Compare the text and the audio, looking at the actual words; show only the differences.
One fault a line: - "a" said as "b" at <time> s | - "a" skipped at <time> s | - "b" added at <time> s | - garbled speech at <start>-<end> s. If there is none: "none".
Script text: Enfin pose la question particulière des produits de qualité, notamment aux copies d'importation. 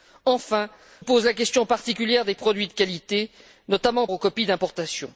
none